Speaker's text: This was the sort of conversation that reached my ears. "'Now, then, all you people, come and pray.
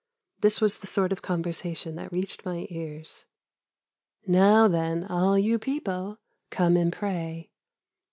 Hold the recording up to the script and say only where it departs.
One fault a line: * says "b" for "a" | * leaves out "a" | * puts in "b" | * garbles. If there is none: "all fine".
all fine